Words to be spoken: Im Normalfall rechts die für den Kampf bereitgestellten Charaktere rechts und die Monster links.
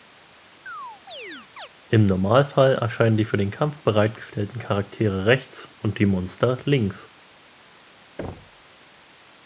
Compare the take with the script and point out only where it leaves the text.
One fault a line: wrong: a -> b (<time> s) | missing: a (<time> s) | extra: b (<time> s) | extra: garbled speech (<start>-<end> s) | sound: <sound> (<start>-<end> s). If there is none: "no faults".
sound: chirp (0.7-1.7 s)
wrong: rechts -> erscheinen (2.7 s)
sound: thud (8.2-8.6 s)